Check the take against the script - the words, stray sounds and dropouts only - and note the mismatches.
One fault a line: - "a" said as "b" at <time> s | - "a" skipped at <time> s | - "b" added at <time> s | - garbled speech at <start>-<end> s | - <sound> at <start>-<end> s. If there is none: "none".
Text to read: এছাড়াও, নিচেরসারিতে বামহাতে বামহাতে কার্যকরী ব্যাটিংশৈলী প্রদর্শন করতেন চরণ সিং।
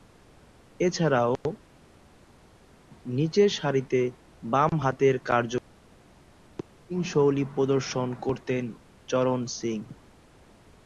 - "বামহাতে" skipped at 5.1 s